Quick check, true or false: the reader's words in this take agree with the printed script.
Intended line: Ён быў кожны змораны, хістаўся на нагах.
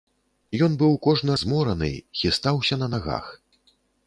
true